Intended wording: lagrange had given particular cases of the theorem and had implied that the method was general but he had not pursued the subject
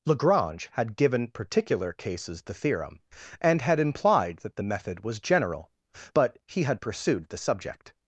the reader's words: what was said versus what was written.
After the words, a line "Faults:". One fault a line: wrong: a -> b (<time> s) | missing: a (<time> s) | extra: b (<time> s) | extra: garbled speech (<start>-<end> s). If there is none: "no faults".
lagrange had given particular cases the theorem and had implied that the method was general but he had pursued the subject
Faults:
missing: of (2.4 s)
missing: not (6.8 s)